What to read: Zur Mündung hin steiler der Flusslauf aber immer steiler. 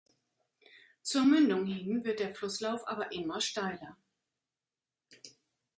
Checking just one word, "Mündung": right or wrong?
right